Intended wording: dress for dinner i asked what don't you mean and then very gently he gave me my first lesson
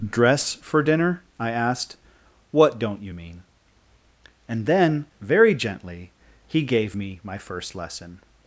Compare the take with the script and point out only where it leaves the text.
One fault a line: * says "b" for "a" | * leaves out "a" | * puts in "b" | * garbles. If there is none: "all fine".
all fine